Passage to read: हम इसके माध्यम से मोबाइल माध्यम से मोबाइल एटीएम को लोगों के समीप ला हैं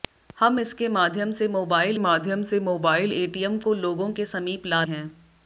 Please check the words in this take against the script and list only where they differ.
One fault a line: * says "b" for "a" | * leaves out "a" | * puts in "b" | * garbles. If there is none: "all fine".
all fine